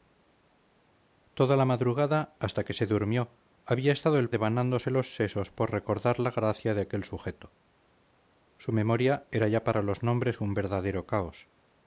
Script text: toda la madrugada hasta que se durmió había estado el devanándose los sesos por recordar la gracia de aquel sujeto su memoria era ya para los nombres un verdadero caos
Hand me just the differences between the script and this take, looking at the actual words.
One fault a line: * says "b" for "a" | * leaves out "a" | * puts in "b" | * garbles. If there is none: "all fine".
all fine